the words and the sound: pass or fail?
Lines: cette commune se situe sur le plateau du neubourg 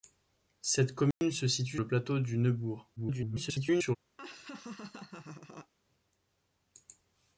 fail